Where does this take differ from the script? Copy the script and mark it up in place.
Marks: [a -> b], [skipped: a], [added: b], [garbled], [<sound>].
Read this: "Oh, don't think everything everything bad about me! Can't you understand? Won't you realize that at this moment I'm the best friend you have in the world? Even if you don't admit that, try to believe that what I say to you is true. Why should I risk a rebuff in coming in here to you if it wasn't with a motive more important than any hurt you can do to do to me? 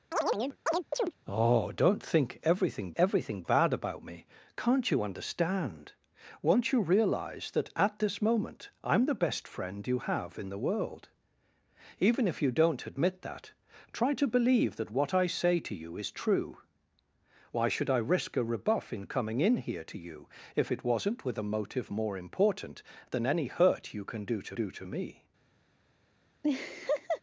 [chirp] "Oh, don't think everything everything bad about me! Can't you understand? Won't you realize that at this moment I'm the best friend you have in the world? Even if you don't admit that, try to believe that what I say to you is true. Why should I risk a rebuff in coming in here to you if it wasn't with a motive more important than any hurt you can do to do to me? [laugh]